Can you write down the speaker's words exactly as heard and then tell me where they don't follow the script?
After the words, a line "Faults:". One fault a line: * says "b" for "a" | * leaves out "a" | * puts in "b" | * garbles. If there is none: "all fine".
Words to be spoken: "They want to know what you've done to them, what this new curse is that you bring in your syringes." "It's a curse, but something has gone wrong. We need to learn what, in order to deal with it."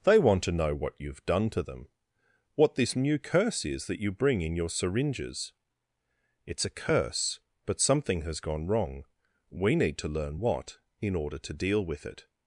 "They want to know what you've done to them, what this new curse is that you bring in your syringes." "It's a curse, but something has gone wrong. We need to learn what, in order to deal with it."
Faults:
all fine